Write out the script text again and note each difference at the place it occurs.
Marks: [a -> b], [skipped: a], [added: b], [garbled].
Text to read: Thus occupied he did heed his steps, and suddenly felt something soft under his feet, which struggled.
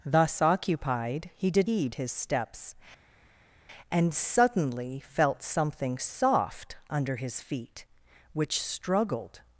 Thus occupied he did heed his steps, and suddenly felt something soft under his feet, which struggled.